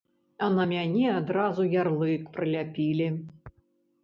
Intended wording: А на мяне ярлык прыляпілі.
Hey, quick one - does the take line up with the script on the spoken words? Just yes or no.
no